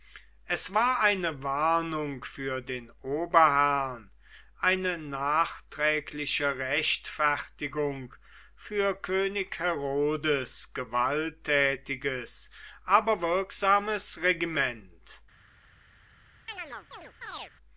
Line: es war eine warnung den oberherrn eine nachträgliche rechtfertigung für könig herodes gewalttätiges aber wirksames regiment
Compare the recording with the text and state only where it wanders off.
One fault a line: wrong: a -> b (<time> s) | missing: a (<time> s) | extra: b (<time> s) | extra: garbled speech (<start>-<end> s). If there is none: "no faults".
extra: für (2.2 s)